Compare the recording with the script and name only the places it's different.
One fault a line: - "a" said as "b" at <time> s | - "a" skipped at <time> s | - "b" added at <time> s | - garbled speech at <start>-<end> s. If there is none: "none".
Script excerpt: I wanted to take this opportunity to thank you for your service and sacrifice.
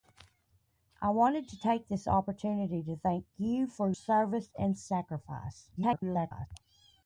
- "your" skipped at 3.9 s
- garbled speech at 5.8-6.5 s